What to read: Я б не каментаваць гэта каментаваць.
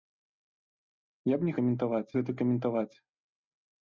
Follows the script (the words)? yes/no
yes